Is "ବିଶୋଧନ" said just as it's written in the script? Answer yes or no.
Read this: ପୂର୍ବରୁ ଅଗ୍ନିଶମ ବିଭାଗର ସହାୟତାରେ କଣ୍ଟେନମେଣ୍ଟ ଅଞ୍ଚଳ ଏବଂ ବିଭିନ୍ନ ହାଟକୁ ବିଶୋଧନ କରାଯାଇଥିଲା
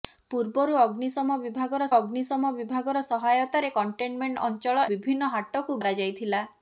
no